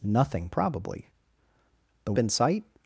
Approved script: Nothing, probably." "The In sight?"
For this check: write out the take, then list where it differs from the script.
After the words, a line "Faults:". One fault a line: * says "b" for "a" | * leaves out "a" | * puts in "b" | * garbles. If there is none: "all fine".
Nothing, probably." "The In sight?"
Faults:
all fine